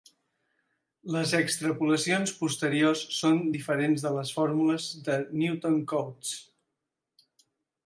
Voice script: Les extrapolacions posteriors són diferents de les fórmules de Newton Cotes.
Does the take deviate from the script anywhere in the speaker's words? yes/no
no